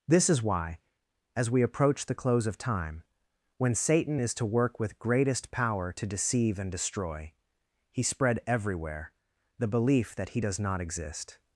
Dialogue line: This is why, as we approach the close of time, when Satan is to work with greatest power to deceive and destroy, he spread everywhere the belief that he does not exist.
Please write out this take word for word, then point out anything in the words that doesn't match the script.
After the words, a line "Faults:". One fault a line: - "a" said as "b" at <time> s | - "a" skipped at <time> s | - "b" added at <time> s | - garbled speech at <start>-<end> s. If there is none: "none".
This is why, as we approach the close of time, when Satan is to work with greatest power to deceive and destroy, he spread everywhere the belief that he does not exist.
Faults:
none